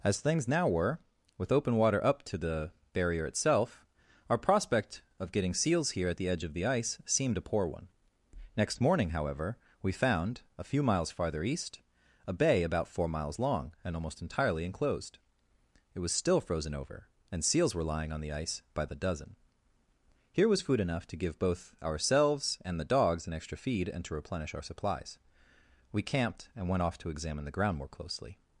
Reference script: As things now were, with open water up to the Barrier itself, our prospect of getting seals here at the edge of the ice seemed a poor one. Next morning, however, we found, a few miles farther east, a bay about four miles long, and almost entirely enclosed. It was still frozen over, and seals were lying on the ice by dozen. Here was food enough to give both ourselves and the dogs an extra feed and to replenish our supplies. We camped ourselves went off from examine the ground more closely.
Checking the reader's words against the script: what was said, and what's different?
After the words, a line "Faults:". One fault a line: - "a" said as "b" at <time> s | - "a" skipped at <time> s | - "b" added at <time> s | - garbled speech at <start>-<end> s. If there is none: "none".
As things now were, with open water up to the Barrier itself, our prospect of getting seals here at the edge of the ice seemed a poor one. Next morning, however, we found, a few miles farther east, a bay about four miles long, and almost entirely enclosed. It was still frozen over, and seals were lying on the ice by the dozen. Here was food enough to give both ourselves and the dogs an extra feed and to replenish our supplies. We camped and went off to examine the ground more closely.
Faults:
- "the" added at 18.8 s
- "ourselves" said as "and" at 26.6 s
- "from" said as "to" at 27.0 s